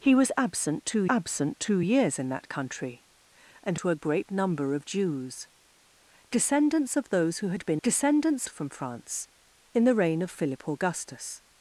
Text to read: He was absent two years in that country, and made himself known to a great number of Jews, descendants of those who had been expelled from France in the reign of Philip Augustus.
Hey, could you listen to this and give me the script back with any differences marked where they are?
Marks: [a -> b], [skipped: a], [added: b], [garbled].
He was absent two [added: absent two] years in that country, and [skipped: made himself known] to a great number of Jews, descendants of those who had been [expelled -> descendants] from France in the reign of Philip Augustus.